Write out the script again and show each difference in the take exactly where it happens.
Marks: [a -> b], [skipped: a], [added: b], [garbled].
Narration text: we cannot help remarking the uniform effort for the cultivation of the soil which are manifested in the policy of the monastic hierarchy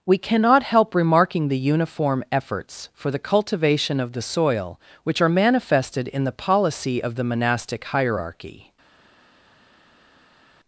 we cannot help remarking the uniform [effort -> efforts] for the cultivation of the soil which are manifested in the policy of the monastic hierarchy